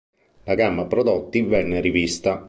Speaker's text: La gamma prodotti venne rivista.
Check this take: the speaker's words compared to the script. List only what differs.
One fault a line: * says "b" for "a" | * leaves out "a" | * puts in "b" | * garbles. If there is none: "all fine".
all fine